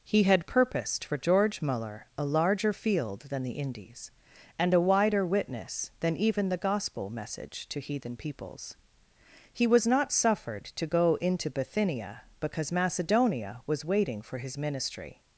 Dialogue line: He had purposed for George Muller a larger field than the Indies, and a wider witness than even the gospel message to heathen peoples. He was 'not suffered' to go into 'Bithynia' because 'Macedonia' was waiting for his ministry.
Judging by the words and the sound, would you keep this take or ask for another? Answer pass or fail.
pass